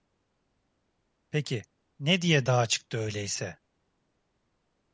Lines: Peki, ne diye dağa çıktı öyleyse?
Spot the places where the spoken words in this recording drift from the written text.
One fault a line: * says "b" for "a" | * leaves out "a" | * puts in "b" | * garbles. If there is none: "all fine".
all fine